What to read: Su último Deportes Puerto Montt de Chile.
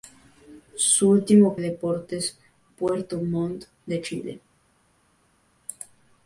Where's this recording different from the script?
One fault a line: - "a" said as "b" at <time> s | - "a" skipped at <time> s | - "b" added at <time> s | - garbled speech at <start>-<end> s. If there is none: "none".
none